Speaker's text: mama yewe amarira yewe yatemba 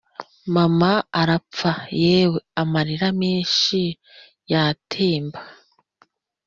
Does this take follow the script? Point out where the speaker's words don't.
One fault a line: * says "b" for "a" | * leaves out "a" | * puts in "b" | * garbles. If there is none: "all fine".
* puts in "arapfa"
* says "menshi" for "yewe"